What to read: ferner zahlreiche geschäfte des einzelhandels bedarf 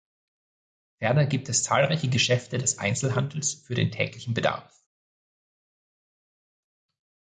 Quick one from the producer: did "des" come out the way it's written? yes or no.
yes